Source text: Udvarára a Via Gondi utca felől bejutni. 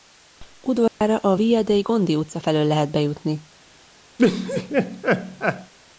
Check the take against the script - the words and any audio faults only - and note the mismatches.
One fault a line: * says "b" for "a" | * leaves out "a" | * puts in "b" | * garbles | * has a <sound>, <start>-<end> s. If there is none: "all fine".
* has a dropout, 0.9-1.0 s
* puts in "dei"
* puts in "lehet"
* has a laugh, 4.2-5.7 s